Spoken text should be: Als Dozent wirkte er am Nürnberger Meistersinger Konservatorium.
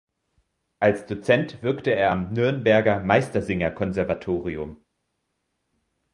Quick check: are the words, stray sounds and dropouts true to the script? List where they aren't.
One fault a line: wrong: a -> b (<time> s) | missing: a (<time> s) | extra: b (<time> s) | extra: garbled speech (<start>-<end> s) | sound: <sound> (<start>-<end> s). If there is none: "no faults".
no faults